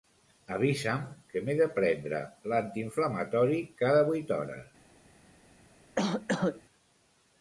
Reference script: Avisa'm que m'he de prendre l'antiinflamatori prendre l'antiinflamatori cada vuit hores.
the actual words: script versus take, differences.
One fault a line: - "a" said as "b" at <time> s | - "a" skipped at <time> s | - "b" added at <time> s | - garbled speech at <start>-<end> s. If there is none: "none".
- "prendre l'antiinflamatori" skipped at 3.6 s